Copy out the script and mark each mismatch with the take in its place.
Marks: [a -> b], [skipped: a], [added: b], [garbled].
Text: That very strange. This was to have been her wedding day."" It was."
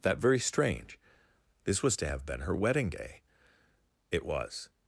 That very strange. This was to have been her wedding day."" It was."